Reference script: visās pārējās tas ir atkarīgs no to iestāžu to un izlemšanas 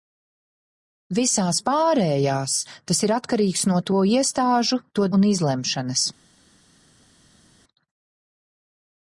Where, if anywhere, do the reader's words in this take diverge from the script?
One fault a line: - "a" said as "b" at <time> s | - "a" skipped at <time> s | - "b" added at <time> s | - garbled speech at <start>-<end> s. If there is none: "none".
none